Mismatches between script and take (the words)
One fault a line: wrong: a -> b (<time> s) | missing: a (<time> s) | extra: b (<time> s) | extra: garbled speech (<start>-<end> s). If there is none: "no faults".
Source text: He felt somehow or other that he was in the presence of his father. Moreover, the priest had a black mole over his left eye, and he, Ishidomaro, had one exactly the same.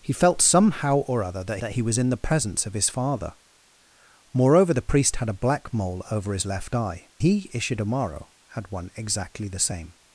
extra: that (1.6 s)
missing: and (7.1 s)